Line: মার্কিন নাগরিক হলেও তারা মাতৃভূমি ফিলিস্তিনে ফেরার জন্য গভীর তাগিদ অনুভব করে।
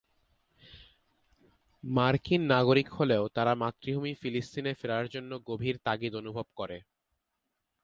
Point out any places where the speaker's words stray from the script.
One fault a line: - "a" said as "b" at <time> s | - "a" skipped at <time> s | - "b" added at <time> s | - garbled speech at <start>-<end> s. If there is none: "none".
none